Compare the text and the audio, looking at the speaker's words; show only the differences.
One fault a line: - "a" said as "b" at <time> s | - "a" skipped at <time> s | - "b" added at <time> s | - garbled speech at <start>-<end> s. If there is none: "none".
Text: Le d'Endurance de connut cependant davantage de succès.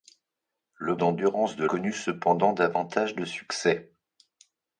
none